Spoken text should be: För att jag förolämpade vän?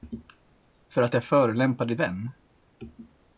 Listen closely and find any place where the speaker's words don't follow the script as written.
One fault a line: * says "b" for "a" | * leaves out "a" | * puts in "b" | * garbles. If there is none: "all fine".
all fine